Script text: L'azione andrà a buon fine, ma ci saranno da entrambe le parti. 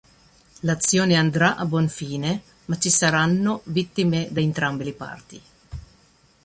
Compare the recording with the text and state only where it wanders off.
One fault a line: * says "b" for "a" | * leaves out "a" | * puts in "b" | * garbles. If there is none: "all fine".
* puts in "vittime"